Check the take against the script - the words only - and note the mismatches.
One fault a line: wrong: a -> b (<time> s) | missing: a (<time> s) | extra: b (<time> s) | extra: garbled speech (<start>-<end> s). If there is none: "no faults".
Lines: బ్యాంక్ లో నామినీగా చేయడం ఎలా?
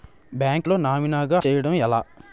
no faults